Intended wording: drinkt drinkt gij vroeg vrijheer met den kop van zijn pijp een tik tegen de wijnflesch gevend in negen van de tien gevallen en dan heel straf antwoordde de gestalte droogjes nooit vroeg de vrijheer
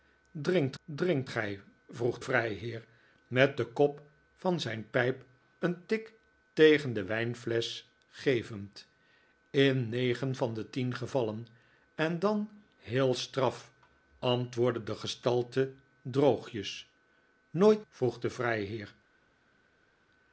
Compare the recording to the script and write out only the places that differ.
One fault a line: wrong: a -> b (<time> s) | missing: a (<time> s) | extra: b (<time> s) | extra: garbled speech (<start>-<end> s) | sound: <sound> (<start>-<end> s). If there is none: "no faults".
no faults